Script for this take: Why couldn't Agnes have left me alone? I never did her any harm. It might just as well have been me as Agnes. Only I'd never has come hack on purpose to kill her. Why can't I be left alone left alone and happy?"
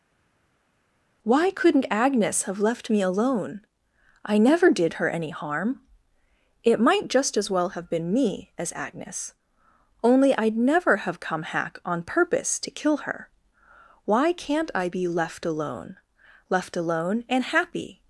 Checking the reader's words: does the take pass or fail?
fail